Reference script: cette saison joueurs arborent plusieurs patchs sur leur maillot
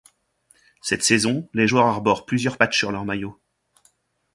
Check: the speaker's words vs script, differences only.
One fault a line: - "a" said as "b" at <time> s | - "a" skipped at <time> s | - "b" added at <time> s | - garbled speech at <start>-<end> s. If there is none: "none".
- "les" added at 1.5 s